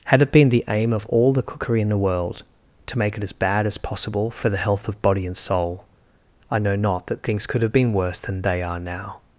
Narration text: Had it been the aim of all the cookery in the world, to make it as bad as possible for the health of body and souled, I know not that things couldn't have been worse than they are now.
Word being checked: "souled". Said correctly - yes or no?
no